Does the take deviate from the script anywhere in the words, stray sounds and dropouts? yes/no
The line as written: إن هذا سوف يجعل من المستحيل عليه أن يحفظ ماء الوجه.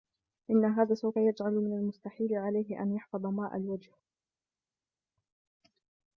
no